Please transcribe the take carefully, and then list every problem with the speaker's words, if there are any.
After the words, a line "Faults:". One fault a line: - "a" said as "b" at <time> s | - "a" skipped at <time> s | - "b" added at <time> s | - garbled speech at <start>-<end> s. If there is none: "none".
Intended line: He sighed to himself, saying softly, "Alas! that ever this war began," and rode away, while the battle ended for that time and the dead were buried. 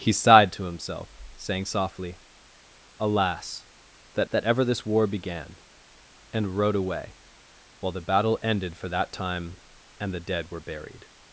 He sighed to himself, saying softly, "Alas! that that ever this war began," and rode away, while the battle ended for that time and the dead were buried.
Faults:
- "that" added at 4.3 s